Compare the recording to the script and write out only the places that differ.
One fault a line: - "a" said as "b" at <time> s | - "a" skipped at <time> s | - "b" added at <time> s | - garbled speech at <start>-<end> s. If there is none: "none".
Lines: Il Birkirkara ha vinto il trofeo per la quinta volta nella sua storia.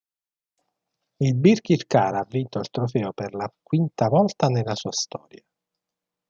none